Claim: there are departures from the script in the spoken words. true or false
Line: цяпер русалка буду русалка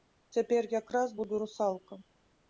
true